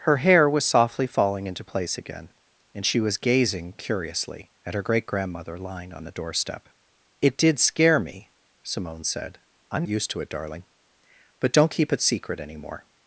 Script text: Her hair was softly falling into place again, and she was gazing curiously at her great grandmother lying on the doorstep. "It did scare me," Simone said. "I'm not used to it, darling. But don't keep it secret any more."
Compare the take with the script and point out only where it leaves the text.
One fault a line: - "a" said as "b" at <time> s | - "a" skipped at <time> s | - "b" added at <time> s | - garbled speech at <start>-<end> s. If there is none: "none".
- "not" skipped at 9.8 s